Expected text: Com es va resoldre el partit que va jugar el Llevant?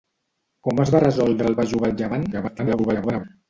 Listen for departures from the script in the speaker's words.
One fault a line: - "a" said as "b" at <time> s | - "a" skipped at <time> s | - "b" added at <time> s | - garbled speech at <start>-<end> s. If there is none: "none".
- "partit que" skipped at 1.6 s
- garbled speech at 2.3-3.2 s